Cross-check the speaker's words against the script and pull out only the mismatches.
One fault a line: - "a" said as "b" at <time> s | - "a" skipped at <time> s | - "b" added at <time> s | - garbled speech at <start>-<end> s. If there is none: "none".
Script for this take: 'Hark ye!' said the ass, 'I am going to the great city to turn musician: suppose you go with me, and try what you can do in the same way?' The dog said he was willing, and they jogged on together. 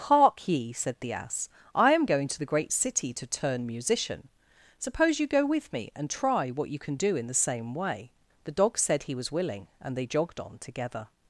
none